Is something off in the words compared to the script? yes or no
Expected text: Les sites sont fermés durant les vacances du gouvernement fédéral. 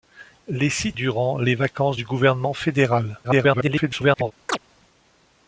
yes